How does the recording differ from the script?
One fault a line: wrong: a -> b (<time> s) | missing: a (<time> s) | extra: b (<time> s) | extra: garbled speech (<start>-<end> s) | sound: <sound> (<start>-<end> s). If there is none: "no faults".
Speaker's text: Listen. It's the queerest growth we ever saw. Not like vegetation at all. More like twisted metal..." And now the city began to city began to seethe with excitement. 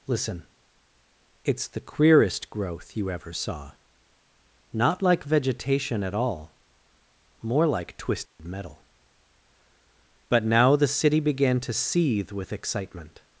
wrong: we -> you (3.0 s)
sound: dropout (8.3-8.4 s)
wrong: And -> But (10.3 s)
missing: city began to (11.7 s)